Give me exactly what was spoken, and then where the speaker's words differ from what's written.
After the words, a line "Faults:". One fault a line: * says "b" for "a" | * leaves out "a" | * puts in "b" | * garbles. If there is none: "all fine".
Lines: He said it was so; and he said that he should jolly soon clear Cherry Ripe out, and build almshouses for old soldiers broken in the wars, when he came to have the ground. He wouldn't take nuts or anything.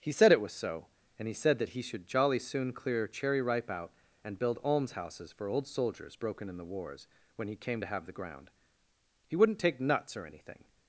He said it was so; and he said that he should jolly soon clear Cherry Ripe out, and build almshouses for old soldiers broken in the wars, when he came to have the ground. He wouldn't take nuts or anything.
Faults:
all fine